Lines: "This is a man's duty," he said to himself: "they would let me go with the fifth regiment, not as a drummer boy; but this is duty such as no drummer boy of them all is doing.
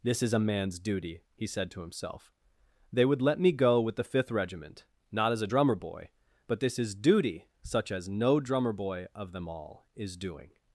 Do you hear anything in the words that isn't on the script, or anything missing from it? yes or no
no